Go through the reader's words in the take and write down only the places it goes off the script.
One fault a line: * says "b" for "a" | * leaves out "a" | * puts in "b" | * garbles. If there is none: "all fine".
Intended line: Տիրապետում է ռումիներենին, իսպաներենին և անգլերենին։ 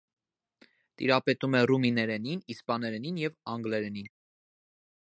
all fine